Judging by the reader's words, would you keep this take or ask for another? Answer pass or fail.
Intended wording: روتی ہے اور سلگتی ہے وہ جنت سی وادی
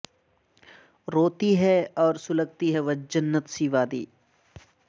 pass